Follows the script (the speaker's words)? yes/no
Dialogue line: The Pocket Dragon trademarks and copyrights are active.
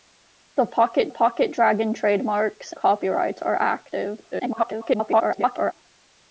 no